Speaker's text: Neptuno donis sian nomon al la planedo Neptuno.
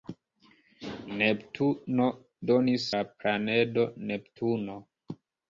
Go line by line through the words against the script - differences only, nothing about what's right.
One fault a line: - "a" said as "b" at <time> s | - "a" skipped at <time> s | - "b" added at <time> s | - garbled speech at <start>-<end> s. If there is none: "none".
- "sian nomon al" skipped at 2.9 s